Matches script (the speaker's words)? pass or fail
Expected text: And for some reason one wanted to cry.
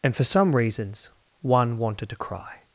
fail